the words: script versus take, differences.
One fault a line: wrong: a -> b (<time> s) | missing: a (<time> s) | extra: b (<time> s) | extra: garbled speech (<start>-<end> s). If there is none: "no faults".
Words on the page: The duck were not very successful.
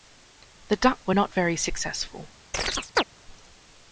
no faults